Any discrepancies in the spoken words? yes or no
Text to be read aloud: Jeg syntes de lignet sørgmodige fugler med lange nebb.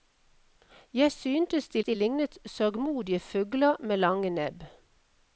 yes